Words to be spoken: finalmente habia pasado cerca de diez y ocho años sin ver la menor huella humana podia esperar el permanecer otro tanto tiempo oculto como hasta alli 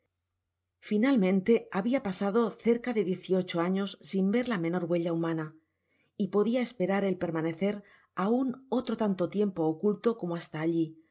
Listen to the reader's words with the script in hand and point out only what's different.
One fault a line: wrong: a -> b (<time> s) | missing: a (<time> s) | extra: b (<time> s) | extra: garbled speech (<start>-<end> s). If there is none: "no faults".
extra: y (6.2 s)
extra: aun (8.2 s)